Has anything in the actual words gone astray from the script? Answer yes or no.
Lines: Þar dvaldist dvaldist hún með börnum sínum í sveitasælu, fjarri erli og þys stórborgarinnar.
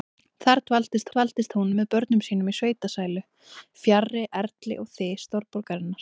no